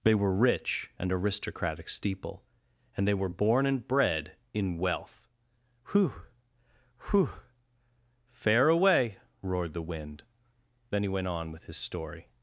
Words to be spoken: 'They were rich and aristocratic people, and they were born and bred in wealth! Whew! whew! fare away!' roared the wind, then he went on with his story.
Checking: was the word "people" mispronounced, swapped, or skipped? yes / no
yes